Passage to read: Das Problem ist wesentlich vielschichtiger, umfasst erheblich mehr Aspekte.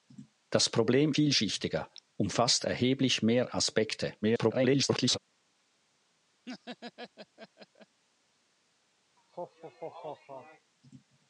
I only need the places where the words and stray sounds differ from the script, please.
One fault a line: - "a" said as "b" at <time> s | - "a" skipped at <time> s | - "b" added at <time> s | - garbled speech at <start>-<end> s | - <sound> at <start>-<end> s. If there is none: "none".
- "ist wesentlich" skipped at 1.1 s
- garbled speech at 4.2-5.2 s
- laugh at 6.5-8.0 s
- laugh at 9.2-10.7 s